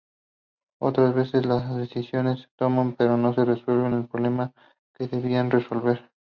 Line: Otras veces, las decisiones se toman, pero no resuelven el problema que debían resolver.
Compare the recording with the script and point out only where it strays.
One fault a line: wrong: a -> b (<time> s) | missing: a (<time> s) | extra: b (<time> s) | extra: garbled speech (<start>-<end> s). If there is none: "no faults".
no faults